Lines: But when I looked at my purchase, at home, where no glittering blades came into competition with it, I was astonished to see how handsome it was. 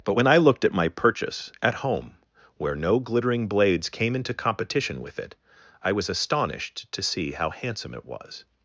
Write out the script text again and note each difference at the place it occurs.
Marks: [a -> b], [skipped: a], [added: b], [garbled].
But when I looked at my purchase, at home, where no glittering blades came into competition with it, I was astonished to see how handsome it was.